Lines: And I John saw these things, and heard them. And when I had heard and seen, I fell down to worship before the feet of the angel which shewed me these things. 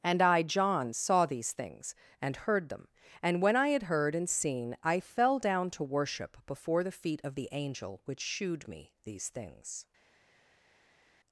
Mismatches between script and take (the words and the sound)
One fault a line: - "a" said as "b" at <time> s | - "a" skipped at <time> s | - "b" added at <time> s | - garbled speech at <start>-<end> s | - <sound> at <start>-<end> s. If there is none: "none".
none